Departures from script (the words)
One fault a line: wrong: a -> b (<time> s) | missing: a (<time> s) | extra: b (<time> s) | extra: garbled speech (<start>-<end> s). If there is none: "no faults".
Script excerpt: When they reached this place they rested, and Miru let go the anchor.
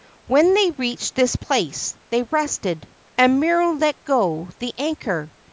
no faults